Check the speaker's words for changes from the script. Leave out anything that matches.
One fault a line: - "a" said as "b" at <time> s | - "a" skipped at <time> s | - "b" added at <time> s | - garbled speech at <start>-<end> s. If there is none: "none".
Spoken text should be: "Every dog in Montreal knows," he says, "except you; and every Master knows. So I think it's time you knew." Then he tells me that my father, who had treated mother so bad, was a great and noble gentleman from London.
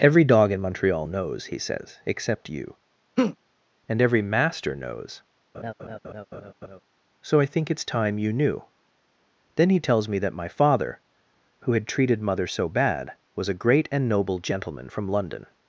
none